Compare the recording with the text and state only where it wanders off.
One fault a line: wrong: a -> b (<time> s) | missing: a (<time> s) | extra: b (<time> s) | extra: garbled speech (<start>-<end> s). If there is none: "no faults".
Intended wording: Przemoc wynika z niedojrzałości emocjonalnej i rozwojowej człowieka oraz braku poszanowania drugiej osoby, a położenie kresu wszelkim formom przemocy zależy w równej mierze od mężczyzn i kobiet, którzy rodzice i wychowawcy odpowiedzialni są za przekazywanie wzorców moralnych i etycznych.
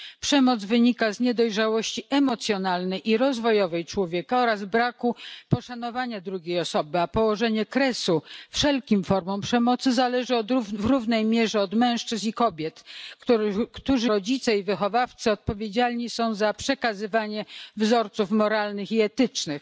no faults